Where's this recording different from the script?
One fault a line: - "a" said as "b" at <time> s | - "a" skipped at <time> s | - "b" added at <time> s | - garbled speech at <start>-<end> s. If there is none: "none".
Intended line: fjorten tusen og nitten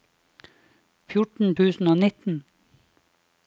none